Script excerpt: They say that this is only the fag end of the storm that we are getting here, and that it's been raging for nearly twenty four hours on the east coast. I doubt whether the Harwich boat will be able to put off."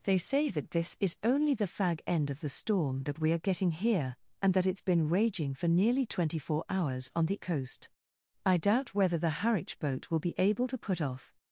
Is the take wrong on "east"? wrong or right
wrong